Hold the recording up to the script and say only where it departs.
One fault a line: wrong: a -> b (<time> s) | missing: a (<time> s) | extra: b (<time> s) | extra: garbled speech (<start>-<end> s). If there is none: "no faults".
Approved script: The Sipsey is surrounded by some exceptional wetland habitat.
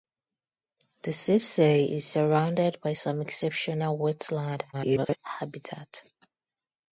extra: garbled speech (4.7-5.2 s)